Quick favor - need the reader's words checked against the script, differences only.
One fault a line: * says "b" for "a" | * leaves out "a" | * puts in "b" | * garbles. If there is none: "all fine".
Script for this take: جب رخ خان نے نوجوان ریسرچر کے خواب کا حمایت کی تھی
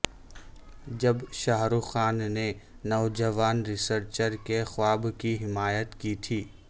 * puts in "شاہ"
* says "کی" for "کا"